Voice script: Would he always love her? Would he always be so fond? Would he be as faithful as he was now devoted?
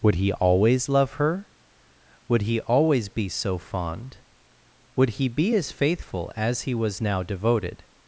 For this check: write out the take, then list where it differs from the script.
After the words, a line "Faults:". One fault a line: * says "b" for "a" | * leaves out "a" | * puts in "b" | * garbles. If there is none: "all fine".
Would he always love her? Would he always be so fond? Would he be as faithful as he was now devoted?
Faults:
all fine